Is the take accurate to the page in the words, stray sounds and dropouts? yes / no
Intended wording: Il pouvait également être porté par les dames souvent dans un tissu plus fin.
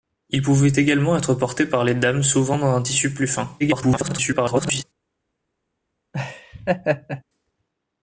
no